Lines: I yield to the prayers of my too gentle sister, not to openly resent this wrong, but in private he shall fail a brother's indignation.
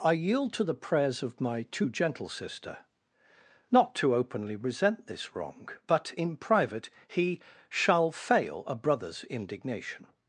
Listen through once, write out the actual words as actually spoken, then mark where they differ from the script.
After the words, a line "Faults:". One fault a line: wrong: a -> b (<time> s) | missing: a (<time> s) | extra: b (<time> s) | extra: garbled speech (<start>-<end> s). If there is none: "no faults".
I yield to the prayers of my too gentle sister, not to openly resent this wrong, but in private he shall fail a brother's indignation.
Faults:
no faults